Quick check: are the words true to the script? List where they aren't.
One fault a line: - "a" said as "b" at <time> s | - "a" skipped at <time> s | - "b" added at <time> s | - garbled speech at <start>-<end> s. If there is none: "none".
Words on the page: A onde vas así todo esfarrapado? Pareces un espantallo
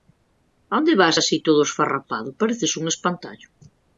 none